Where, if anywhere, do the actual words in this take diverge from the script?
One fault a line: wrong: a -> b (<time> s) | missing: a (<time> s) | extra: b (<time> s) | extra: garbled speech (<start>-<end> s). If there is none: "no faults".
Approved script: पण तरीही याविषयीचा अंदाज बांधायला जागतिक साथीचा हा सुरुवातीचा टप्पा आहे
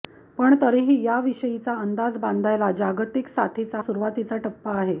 missing: हा (3.8 s)